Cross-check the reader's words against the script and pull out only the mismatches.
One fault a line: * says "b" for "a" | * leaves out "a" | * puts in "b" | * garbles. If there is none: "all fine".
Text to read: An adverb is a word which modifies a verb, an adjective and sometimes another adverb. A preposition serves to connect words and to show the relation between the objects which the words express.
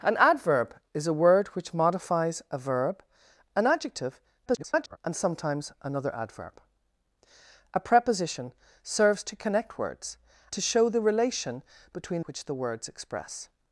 * garbles
* leaves out "and"
* leaves out "the objects"